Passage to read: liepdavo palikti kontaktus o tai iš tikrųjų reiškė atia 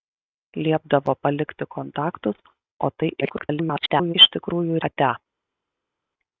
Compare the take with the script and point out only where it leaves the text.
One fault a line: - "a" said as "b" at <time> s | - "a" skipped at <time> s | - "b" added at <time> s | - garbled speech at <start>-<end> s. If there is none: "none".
- garbled speech at 3.2-4.1 s
- "reiškė" skipped at 4.8 s